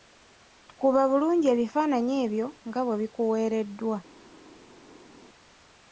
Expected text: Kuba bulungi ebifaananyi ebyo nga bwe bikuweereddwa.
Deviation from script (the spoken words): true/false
false